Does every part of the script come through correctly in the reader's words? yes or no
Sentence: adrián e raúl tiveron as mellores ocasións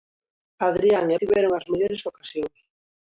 no